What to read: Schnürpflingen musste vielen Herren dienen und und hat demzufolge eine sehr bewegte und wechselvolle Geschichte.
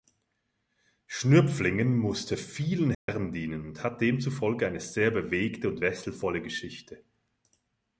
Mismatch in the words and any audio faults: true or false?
true